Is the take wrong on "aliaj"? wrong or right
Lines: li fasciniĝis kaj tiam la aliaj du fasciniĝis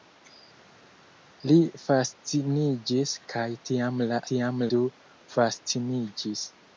wrong